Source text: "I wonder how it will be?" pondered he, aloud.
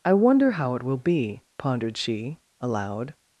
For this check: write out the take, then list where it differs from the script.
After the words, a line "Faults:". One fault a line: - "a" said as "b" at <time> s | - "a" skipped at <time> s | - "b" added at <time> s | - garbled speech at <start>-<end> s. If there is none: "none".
"I wonder how it will be?" pondered she, aloud.
Faults:
- "he" said as "she" at 2.0 s